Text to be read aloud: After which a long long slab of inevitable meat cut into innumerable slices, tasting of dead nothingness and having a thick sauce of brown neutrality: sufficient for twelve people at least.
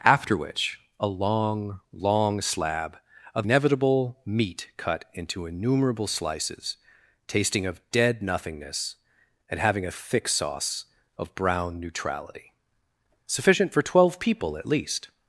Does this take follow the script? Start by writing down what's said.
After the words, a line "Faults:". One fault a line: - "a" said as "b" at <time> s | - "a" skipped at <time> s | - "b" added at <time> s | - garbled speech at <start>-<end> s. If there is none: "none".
After which a long long slab of inevitable meat cut into innumerable slices, tasting of dead nothingness and having a thick sauce of brown neutrality: sufficient for twelve people at least.
Faults:
none